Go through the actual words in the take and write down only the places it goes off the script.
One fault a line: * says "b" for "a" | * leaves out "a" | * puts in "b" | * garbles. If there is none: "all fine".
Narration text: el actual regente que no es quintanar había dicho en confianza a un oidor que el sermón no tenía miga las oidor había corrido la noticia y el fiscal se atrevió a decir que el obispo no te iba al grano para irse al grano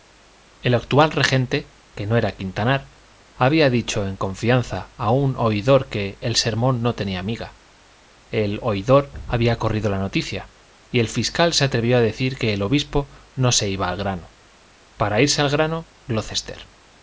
* says "era" for "es"
* says "el" for "las"
* says "se" for "te"